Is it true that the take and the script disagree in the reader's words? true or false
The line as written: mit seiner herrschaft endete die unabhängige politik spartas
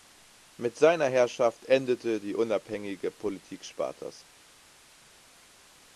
false